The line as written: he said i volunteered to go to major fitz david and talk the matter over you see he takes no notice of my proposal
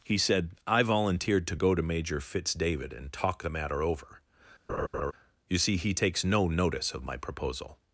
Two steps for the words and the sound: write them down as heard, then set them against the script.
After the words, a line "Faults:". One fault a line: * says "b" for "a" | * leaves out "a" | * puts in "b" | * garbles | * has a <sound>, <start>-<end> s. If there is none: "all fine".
he said i volunteered to go to major fitz david and talk the matter over you see he takes no notice of my proposal
Faults:
* has a laugh, 4.7-5.1 s